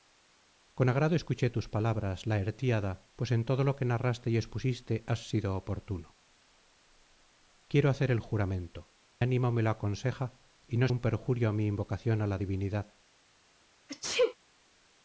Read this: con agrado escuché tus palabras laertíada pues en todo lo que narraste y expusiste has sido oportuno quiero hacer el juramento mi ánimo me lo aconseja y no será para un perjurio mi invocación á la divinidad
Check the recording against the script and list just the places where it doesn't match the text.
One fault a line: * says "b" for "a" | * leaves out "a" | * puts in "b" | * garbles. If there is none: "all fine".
* leaves out "mi"
* leaves out "será para"